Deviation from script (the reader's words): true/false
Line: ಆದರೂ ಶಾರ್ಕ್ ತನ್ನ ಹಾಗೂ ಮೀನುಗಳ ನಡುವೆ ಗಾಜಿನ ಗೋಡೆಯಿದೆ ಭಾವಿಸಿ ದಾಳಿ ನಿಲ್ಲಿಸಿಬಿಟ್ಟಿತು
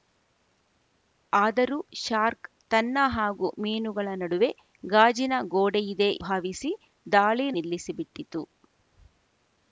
false